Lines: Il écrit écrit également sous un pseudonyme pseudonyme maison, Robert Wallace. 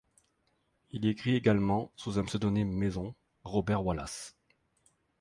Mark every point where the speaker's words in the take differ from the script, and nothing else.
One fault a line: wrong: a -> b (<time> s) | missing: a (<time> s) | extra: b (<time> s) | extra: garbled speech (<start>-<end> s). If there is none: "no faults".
missing: écrit (1.4 s)
missing: pseudonyme (2.7 s)